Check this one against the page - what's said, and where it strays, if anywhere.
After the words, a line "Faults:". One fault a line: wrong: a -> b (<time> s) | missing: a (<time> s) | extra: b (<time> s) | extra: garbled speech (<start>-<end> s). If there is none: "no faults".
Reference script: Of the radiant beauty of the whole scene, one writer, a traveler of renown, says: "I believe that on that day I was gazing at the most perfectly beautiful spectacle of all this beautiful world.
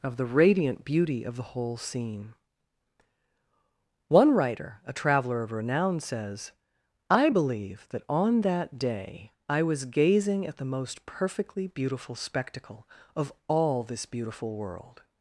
Of the radiant beauty of the whole scene, one writer, a traveler of renown, says: "I believe that on that day I was gazing at the most perfectly beautiful spectacle of all this beautiful world.
Faults:
no faults